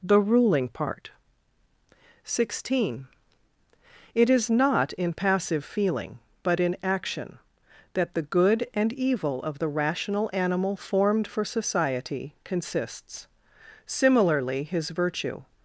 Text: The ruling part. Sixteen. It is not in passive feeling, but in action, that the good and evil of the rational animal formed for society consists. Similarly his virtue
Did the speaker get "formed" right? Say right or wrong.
right